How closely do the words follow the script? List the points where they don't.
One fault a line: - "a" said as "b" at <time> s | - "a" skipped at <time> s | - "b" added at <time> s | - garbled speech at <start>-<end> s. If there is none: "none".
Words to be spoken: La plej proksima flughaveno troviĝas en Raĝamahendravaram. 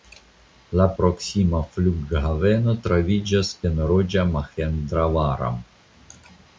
- "plej" skipped at 0.8 s